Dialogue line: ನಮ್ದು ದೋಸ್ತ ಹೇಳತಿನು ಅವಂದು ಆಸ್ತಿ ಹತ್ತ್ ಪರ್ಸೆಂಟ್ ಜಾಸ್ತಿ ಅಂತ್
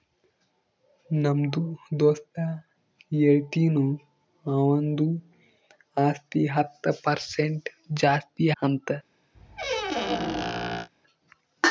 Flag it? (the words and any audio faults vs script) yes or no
yes